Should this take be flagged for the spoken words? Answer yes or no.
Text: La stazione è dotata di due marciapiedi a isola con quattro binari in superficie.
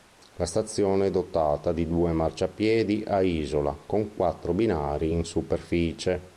no